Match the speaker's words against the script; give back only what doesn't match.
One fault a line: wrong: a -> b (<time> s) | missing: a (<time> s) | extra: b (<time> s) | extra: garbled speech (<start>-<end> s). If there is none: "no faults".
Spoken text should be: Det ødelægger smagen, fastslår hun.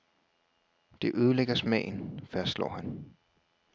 wrong: hun -> han (2.7 s)